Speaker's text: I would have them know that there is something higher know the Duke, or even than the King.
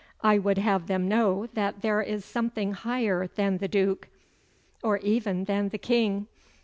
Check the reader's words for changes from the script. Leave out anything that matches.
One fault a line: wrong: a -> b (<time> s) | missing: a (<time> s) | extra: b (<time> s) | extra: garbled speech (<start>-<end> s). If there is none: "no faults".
wrong: know -> than (3.3 s)